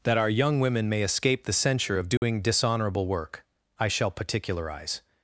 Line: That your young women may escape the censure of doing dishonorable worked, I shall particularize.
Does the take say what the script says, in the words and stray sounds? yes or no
no